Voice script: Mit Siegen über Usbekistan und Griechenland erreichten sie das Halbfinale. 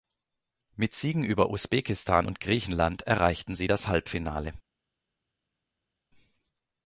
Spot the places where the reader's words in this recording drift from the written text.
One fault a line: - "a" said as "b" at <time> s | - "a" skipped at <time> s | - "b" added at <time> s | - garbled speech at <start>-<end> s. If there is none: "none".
none